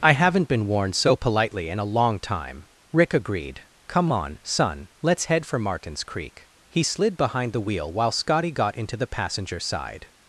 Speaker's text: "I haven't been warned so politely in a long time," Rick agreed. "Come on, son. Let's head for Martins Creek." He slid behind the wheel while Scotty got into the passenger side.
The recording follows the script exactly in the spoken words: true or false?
true